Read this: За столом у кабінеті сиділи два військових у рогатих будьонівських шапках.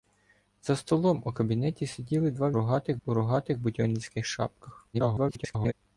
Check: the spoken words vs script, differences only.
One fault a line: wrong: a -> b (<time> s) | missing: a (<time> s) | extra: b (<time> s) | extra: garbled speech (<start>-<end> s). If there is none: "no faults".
wrong: військових -> рогатих (2.5 s)
extra: garbled speech (4.9-5.7 s)